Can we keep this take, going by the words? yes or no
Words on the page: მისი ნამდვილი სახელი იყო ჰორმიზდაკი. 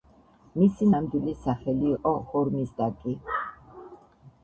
yes